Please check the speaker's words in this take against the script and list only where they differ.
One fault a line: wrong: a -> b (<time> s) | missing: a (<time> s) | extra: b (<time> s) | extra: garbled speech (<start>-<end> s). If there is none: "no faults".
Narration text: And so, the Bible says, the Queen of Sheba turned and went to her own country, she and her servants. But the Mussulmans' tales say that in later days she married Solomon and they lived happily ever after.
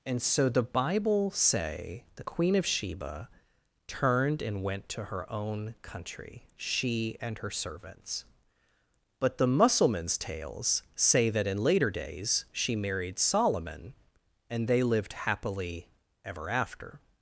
wrong: says -> say (1.3 s)